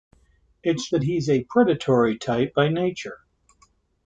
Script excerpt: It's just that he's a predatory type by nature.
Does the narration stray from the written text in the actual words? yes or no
yes